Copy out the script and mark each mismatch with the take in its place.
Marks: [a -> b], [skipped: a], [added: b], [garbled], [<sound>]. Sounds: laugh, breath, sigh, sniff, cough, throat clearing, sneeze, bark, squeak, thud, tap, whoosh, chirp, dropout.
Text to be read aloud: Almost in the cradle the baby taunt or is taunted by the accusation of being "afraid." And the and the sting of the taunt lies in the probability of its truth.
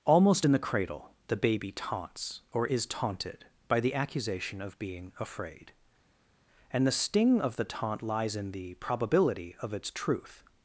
Almost in the cradle the baby [taunt -> taunts] or is taunted by the accusation of being "afraid." And the [skipped: and the] sting of the taunt lies in the probability of its truth.